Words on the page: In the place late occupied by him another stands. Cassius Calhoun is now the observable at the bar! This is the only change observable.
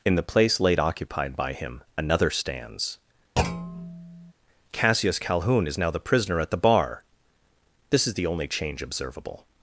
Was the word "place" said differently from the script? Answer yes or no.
no